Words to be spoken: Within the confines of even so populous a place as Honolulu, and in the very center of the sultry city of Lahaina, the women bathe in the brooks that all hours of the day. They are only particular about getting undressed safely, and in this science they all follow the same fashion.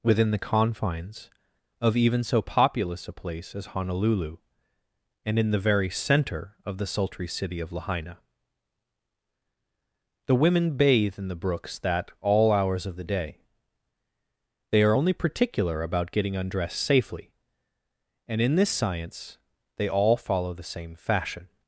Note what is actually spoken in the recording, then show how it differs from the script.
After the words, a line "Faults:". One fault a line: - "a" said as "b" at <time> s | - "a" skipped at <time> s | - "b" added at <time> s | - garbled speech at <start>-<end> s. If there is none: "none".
Within the confines of even so populous a place as Honolulu, and in the very center of the sultry city of Lahaina, the women bathe in the brooks that all hours of the day. They are only particular about getting undressed safely, and in this science they all follow the same fashion.
Faults:
none